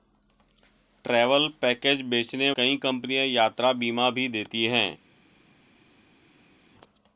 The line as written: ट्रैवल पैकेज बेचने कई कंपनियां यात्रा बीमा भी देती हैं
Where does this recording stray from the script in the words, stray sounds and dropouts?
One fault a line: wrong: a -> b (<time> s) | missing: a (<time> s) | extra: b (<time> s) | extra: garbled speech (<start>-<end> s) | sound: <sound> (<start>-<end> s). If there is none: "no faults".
no faults